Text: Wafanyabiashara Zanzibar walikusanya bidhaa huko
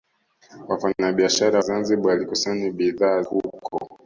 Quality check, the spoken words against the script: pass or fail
pass